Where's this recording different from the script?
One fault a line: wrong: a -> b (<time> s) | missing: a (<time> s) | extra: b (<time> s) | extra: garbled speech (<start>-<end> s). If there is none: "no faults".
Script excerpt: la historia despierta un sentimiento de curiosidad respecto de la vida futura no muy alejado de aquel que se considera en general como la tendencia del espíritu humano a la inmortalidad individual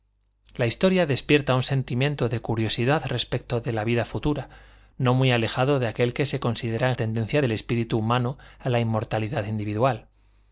missing: general como la (7.0 s)